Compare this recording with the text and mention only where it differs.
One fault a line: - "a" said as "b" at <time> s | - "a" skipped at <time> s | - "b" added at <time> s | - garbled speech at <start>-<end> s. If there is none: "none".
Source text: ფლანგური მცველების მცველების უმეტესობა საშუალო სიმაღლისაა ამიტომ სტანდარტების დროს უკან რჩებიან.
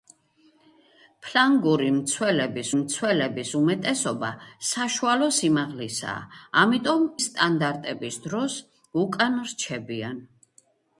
none